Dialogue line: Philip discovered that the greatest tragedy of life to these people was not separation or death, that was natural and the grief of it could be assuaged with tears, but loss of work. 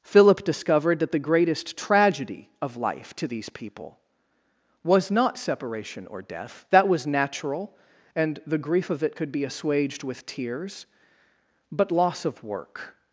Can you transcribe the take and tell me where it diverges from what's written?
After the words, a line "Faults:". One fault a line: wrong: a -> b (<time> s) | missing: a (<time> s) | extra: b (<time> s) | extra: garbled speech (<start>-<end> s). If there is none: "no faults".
Philip discovered that the greatest tragedy of life to these people was not separation or death, that was natural and the grief of it could be assuaged with tears, but loss of work.
Faults:
no faults